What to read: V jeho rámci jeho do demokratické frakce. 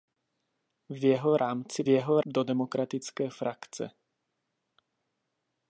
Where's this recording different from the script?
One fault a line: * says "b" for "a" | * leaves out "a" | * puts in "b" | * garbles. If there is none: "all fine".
all fine